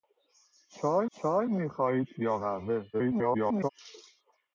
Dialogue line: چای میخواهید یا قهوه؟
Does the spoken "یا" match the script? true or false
true